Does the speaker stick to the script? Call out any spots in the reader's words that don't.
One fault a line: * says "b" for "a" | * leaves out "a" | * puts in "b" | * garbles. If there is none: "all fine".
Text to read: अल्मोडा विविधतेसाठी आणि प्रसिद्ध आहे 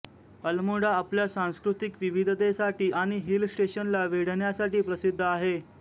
* puts in "आपल्या सांस्कृतिक"
* puts in "हिल स्टेशनला वेढण्यासाठी"